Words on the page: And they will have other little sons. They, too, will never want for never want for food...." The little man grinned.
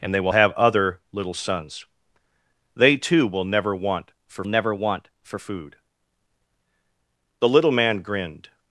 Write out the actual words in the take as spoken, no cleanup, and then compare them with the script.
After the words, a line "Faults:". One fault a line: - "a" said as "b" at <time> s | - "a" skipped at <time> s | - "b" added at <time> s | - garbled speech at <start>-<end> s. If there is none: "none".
And they will have other little sons. They, too, will never want for never want for food...." The little man grinned.
Faults:
none